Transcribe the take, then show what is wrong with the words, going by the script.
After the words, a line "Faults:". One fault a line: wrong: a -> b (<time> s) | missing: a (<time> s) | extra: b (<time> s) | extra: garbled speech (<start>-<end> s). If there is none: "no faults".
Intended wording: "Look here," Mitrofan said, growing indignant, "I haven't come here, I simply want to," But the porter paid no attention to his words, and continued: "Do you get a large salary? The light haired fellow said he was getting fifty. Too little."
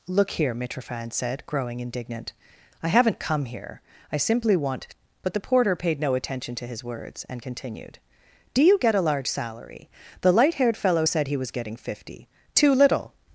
"Look here," Mitrofan said, growing indignant, "I haven't come here, I simply want," But the porter paid no attention to his words, and continued: "Do you get a large salary? The light haired fellow said he was getting fifty. Too little."
Faults:
missing: to (4.9 s)